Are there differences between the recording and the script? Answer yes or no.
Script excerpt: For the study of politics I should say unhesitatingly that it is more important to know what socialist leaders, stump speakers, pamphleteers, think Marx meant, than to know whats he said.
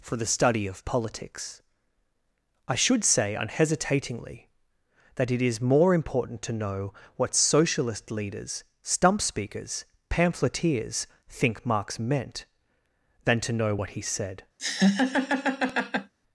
yes